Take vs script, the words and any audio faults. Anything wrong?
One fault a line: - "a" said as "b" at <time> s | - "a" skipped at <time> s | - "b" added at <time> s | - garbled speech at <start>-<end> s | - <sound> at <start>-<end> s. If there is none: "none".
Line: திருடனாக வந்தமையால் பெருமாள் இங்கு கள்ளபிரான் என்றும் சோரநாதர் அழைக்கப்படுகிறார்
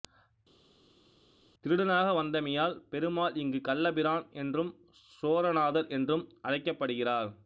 - "என்றும்" added at 5.9 s